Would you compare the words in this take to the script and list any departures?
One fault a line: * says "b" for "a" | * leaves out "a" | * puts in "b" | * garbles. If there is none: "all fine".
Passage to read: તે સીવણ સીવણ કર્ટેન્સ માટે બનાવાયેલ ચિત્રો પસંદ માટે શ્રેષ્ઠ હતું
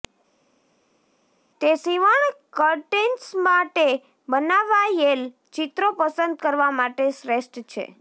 * leaves out "સીવણ"
* puts in "કરવા"
* says "છે" for "હતું"